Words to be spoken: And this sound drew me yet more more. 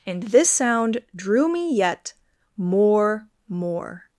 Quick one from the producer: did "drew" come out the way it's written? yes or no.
yes